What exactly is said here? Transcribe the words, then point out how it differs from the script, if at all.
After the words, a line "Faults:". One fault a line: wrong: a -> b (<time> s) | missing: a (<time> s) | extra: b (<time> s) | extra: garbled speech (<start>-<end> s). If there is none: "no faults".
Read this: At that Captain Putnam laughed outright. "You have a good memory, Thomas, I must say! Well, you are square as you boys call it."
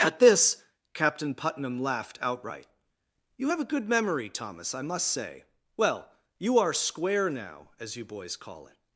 At this Captain Putnam laughed outright. "You have a good memory, Thomas, I must say! Well, you are square now, as you boys call it."
Faults:
wrong: that -> this (0.2 s)
extra: now (7.3 s)